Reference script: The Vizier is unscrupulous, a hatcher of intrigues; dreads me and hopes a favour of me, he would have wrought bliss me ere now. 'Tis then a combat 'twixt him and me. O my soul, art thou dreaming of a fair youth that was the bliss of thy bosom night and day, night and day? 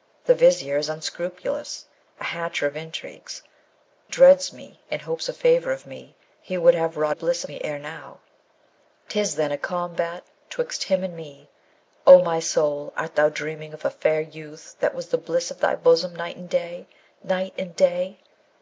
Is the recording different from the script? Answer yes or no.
no